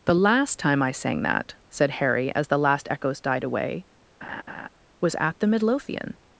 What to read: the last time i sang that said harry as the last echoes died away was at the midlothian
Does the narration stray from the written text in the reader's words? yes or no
no